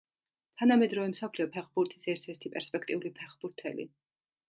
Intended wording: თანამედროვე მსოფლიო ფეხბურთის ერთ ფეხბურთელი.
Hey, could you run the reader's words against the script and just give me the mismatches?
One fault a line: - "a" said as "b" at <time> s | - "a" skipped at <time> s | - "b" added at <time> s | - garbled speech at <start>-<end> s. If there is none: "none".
- "ერთი პერსპექტიული" added at 2.3 s